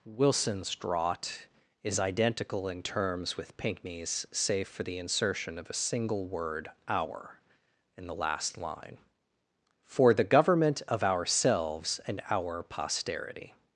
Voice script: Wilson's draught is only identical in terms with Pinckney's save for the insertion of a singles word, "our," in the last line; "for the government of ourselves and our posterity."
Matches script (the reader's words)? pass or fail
fail